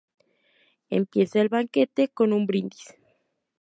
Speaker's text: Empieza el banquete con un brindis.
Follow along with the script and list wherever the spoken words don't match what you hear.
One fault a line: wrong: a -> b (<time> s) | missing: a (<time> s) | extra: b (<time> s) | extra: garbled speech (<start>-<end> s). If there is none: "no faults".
no faults